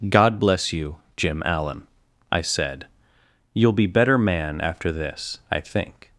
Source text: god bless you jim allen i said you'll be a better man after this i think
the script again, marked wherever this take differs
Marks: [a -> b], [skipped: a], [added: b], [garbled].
god bless you jim allen i said you'll be [skipped: a] better man after this i think